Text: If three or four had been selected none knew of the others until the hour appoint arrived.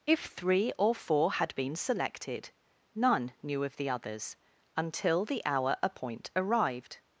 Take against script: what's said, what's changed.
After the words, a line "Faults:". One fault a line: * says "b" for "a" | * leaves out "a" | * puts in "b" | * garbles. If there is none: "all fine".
If three or four had been selected none knew of the others until the hour appoint arrived.
Faults:
all fine